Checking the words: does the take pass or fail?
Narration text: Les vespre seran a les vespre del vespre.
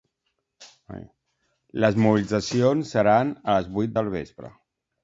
fail